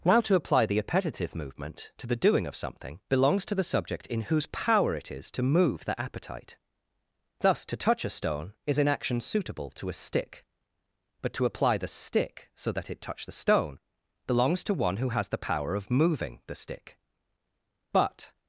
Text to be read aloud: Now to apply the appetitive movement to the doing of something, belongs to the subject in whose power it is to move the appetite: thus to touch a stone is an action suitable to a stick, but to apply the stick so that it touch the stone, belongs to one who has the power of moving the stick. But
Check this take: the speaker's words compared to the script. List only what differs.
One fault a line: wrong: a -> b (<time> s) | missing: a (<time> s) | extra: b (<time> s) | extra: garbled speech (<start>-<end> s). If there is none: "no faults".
no faults